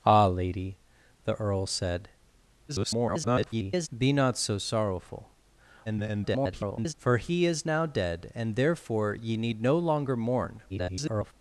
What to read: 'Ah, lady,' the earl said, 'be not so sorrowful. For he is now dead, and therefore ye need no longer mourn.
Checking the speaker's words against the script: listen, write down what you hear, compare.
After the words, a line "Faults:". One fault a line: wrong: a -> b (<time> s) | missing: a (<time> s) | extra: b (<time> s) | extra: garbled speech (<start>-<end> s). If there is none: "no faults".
'Ah, lady,' the earl said, [garbled] 'be not so sorrowful. [garbled] For he is now dead, and therefore ye need no longer mourn. [garbled]
Faults:
extra: garbled speech (2.7-3.9 s)
extra: garbled speech (5.8-6.9 s)
extra: garbled speech (10.7-11.3 s)